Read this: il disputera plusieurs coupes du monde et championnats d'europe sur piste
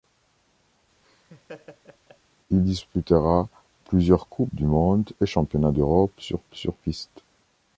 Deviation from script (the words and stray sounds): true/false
true